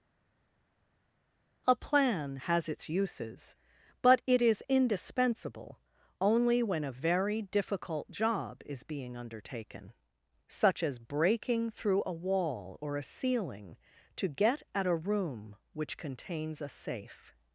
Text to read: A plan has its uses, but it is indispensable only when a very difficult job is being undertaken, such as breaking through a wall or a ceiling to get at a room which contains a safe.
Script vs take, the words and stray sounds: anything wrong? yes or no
no